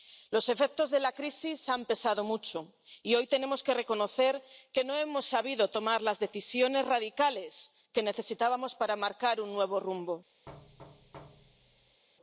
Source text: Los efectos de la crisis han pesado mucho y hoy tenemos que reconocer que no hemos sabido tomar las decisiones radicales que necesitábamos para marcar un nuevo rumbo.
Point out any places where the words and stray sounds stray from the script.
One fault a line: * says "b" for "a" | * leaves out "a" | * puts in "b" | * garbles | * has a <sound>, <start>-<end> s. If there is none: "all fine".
* has a thud, 10.5-12.0 s